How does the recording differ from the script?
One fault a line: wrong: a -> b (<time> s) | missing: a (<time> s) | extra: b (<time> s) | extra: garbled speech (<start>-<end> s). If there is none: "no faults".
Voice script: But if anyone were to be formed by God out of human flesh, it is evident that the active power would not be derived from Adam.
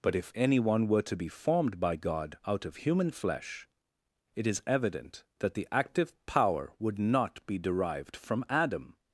no faults